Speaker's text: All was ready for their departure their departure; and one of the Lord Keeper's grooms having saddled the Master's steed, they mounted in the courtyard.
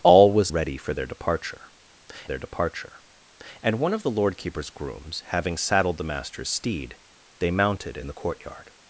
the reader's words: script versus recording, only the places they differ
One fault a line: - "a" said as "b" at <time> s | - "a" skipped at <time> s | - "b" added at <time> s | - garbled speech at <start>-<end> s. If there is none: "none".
none